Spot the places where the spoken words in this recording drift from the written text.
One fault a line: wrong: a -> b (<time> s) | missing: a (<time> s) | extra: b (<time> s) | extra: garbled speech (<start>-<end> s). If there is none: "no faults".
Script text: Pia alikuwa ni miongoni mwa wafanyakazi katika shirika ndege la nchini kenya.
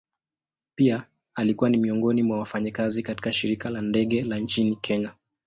extra: la (3.7 s)